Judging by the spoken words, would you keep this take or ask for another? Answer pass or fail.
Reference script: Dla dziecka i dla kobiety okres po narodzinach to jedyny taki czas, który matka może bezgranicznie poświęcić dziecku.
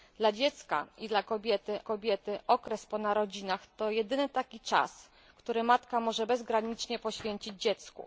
fail